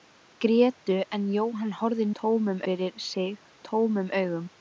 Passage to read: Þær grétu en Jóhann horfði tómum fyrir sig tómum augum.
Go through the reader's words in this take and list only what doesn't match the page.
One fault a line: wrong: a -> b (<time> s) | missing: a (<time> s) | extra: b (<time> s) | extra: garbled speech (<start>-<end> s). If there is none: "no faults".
no faults